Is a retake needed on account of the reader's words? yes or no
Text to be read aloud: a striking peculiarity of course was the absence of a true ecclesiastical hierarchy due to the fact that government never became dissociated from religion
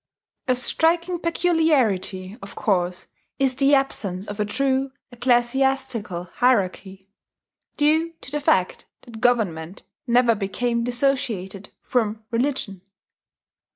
yes